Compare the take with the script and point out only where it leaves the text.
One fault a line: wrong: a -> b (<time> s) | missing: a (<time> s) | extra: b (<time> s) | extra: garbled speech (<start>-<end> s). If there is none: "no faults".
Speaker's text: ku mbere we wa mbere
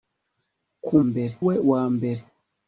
no faults